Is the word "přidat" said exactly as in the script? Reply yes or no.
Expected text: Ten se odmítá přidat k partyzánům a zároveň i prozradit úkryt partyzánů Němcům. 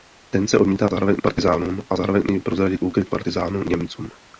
no